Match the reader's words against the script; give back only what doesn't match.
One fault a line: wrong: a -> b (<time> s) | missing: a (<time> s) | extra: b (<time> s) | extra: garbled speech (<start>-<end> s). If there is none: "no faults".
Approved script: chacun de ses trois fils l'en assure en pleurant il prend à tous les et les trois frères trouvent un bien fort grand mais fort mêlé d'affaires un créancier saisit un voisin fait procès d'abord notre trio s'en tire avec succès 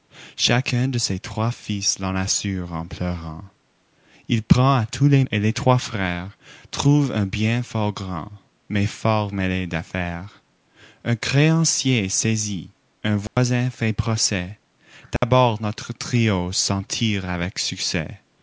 no faults